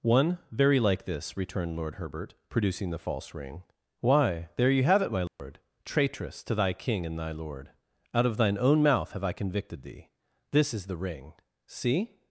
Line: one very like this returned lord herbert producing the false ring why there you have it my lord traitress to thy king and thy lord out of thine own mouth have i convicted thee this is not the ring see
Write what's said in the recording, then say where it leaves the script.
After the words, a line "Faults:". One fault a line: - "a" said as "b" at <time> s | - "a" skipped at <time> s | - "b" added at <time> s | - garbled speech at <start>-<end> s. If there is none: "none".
one very like this returned lord herbert producing the false ring why there you have it my lord traitress to thy king and thy lord out of thine own mouth have i convicted thee this is the ring see
Faults:
- "not" skipped at 10.9 s